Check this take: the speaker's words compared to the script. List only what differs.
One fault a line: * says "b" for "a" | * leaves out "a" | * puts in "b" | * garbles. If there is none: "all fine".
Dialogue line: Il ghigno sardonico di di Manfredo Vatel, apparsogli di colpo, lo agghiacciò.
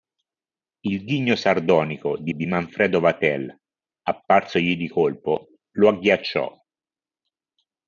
all fine